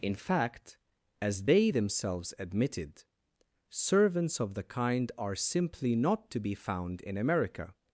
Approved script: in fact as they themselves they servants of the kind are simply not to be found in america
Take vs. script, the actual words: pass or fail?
fail